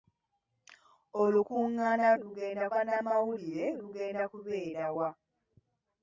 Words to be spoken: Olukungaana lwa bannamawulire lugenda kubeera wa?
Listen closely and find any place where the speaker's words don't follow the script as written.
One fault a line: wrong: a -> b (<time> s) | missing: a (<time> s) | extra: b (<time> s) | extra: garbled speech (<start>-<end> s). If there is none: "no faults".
wrong: lwa -> lugenda (2.2 s)